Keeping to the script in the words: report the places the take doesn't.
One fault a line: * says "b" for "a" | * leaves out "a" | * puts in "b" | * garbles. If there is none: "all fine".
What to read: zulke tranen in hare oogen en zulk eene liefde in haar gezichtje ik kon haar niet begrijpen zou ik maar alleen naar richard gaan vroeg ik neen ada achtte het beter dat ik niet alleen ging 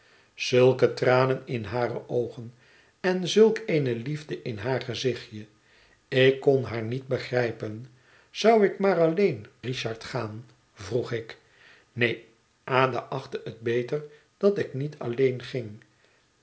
* leaves out "naar"